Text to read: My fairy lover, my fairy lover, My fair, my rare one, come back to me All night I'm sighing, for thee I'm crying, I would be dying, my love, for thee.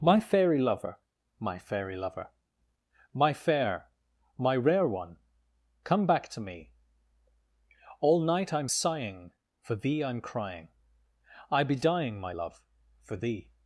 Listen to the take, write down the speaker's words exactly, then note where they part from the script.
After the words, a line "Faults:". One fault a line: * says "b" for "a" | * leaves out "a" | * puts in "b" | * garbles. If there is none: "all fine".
My fairy lover, my fairy lover, My fair, my rare one, come back to me All night I'm sighing, for thee I'm crying, I be dying, my love, for thee.
Faults:
* leaves out "would"